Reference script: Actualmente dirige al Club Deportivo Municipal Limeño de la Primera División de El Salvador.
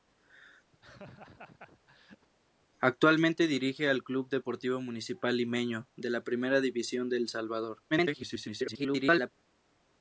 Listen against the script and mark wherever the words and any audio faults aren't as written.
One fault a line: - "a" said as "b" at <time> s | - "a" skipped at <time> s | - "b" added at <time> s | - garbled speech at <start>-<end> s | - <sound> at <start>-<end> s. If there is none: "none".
- laugh at 0.7-2.3 s
- garbled speech at 7.9-9.3 s